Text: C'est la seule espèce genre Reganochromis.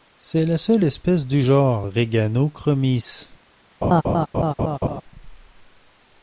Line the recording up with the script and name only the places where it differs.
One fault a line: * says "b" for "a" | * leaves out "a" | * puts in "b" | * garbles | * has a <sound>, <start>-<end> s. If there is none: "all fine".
* puts in "du"
* has a laugh, 3.8-5.0 s